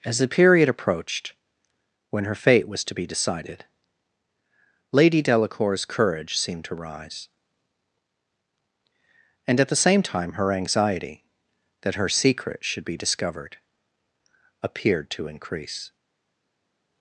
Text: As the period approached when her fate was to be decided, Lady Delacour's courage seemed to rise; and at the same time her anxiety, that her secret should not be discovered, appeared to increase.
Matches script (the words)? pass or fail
fail